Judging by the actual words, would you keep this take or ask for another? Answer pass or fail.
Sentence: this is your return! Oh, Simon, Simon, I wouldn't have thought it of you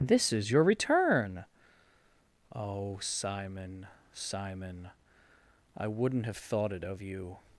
pass